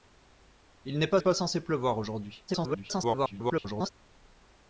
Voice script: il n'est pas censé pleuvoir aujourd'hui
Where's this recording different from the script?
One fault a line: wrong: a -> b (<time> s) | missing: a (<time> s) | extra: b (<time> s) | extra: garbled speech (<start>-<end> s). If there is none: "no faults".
extra: pas (1.2 s)
extra: garbled speech (2.5-3.9 s)